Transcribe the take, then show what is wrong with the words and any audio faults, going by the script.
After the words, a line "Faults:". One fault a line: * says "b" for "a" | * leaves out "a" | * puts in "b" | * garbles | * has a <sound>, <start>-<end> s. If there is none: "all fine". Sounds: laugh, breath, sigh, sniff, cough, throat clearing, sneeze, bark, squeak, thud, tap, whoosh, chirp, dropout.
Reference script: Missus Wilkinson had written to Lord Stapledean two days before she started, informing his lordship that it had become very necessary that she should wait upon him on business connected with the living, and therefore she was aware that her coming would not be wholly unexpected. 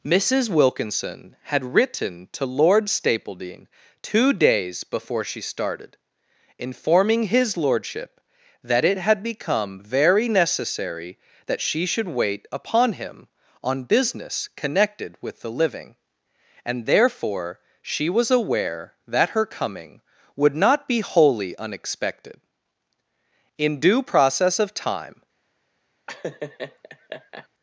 Missus Wilkinson had written to Lord Stapledean two days before she started, informing his lordship that it had become very necessary that she should wait upon him on business connected with the living, and therefore she was aware that her coming would not be wholly unexpected. In due process of time
Faults:
* puts in "In due process of time"
* has a laugh, 26.1-27.5 s